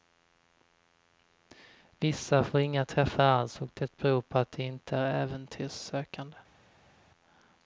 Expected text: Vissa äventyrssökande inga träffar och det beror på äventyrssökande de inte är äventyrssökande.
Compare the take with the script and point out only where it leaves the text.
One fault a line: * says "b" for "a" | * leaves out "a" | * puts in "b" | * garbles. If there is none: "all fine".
* says "får" for "äventyrssökande"
* puts in "alls"
* says "att" for "äventyrssökande"